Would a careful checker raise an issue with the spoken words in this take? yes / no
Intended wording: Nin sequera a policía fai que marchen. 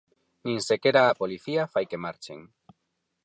no